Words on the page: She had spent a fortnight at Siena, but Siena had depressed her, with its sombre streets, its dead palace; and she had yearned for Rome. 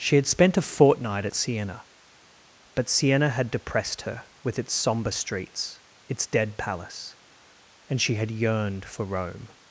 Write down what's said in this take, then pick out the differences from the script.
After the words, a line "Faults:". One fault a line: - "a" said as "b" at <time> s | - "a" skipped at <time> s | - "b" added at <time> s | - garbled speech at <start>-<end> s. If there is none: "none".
She had spent a fortnight at Siena, but Siena had depressed her, with its sombre streets, its dead palace; and she had yearned for Rome.
Faults:
none